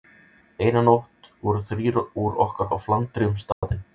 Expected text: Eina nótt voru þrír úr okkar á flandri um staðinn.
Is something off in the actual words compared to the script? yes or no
no